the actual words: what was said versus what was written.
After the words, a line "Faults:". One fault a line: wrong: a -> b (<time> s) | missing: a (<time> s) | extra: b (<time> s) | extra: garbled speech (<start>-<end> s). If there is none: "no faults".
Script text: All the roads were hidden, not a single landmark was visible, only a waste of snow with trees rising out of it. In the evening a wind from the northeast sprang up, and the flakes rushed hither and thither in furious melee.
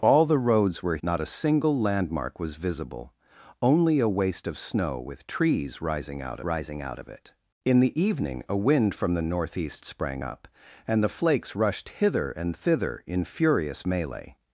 All the roads were not a single landmark was visible, only a waste of snow with trees rising out rising out of it. In the evening a wind from the northeast sprang up, and the flakes rushed hither and thither in furious melee.
Faults:
missing: hidden (1.0 s)
extra: rising out (6.4 s)